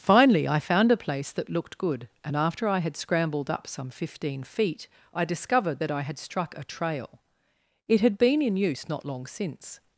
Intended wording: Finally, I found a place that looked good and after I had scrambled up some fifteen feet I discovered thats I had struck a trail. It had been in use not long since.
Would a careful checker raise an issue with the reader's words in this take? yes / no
yes